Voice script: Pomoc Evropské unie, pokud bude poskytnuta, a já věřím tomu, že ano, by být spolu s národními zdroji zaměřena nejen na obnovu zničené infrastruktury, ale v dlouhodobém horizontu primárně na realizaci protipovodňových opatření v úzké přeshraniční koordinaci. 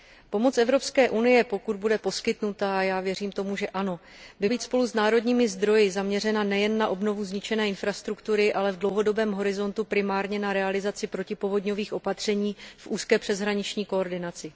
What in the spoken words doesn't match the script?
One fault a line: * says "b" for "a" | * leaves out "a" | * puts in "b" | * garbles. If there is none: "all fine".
all fine